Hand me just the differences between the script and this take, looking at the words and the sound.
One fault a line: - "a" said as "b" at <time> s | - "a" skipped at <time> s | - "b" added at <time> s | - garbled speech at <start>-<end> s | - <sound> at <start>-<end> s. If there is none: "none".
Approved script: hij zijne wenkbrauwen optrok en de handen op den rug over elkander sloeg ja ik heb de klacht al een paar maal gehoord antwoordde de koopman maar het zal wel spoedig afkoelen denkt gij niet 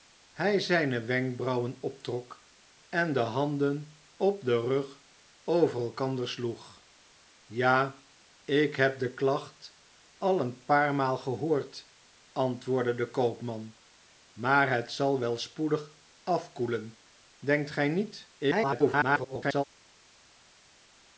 - garbled speech at 18.4-19.6 s